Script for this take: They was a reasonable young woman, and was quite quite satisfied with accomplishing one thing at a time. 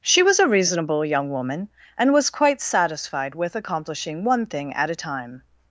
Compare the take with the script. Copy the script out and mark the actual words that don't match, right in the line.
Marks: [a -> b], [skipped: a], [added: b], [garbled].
[They -> She] was a reasonable young woman, and was quite [skipped: quite] satisfied with accomplishing one thing at a time.